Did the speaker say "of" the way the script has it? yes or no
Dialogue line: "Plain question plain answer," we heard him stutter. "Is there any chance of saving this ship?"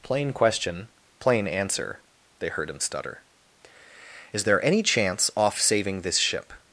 no